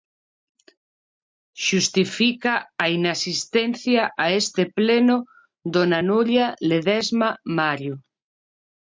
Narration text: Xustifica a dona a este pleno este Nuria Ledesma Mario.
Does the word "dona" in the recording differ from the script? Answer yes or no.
yes